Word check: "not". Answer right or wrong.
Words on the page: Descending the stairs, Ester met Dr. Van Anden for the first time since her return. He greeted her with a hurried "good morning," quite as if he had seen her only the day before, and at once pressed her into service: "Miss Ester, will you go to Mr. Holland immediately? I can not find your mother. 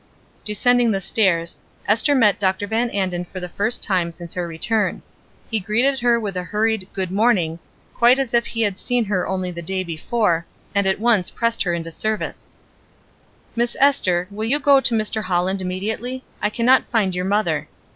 right